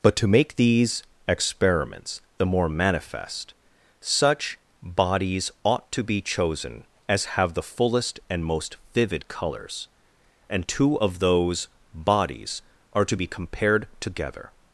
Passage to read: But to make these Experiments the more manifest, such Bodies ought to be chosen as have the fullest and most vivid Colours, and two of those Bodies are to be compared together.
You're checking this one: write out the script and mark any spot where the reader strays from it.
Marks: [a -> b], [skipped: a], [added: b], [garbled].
But to make these Experiments the more manifest, such Bodies ought to be chosen as have the fullest and most vivid Colours, and two of those Bodies are to be compared together.